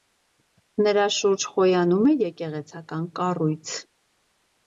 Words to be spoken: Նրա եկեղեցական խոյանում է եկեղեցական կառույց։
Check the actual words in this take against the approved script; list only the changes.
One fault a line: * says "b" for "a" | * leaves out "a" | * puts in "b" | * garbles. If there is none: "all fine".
* says "շուրջ" for "եկեղեցական"